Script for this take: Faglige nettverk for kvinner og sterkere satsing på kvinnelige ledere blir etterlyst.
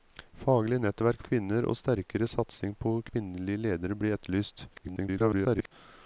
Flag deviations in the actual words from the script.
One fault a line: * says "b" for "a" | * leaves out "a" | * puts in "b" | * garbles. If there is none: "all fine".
* leaves out "for"
* garbles